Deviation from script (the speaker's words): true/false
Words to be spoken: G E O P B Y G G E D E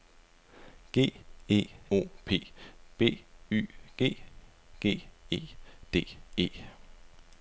false